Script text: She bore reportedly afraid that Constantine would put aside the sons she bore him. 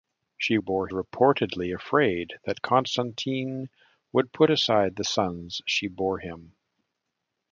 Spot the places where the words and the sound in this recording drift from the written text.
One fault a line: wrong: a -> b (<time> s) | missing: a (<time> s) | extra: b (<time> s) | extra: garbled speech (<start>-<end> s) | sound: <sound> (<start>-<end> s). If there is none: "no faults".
no faults